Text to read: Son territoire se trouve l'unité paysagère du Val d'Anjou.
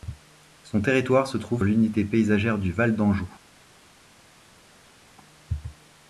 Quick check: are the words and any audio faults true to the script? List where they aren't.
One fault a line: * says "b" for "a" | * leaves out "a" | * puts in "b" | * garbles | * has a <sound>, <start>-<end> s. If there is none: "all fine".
all fine